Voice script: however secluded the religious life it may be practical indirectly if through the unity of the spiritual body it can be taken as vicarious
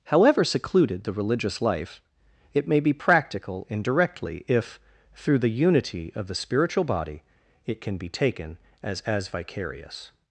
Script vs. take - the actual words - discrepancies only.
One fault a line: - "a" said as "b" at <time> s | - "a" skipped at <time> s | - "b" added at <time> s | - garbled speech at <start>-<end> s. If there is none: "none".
- "as" added at 9.0 s